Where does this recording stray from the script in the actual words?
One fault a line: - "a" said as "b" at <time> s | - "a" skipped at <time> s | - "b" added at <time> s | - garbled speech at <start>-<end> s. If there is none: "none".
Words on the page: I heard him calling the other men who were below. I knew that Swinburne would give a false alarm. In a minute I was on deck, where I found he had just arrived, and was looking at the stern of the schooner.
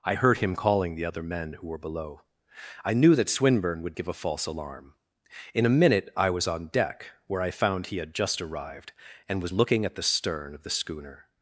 none